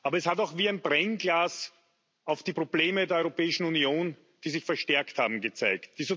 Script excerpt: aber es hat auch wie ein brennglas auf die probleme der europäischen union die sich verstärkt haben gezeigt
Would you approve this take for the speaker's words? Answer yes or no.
yes